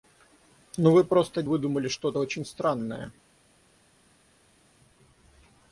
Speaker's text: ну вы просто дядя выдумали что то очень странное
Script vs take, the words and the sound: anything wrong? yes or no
yes